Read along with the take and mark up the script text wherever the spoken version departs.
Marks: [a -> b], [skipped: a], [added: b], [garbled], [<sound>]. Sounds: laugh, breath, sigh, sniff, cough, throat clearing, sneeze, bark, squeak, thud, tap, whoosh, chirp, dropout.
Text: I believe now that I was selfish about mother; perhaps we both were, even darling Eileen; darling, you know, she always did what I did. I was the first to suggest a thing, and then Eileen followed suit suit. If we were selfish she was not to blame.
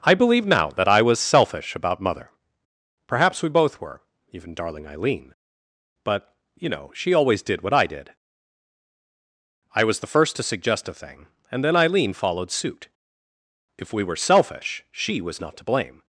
I believe now that I was selfish about mother; perhaps we both were, even darling Eileen; [darling, -> but] you know, she always did what I did. I was the first to suggest a thing, and then Eileen followed suit [skipped: suit.] If we were selfish she was not to blame.